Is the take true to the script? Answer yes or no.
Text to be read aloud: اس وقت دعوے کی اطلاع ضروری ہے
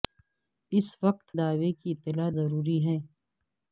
yes